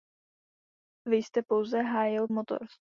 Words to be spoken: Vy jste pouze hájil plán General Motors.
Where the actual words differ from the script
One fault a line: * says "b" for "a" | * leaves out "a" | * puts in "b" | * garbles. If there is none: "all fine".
* leaves out "plán General"